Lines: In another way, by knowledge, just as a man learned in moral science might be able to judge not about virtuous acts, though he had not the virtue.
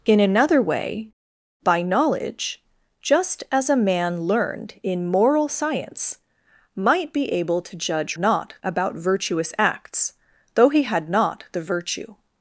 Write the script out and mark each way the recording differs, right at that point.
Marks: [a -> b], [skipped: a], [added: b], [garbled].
In another way, by knowledge, just as a man learned in moral science might be able to judge not about virtuous acts, though he had not the virtue.